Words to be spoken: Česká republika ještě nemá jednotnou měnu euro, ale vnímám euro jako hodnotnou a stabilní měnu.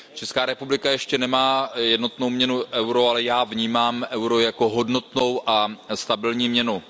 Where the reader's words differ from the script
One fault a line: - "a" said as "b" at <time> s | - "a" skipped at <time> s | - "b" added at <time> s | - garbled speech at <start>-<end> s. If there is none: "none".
- "já" added at 3.2 s